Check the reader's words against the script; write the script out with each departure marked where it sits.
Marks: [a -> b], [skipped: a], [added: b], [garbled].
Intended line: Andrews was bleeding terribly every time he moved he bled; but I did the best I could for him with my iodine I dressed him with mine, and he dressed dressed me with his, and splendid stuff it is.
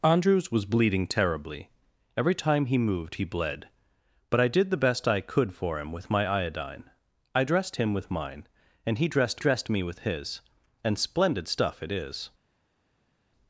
Andrews was bleeding terribly every time he moved he bled; but I did the best I could for him with my iodine I dressed him with mine, and he dressed dressed me with his, and splendid stuff it is.